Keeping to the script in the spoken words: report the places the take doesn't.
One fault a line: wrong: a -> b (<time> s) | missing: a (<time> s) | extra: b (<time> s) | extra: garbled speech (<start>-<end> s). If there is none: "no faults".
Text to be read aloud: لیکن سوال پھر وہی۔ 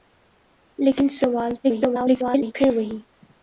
extra: garbled speech (1.6-2.5 s)